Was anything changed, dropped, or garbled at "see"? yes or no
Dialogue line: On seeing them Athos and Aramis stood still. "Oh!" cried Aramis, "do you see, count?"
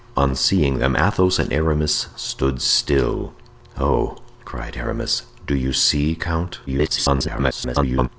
no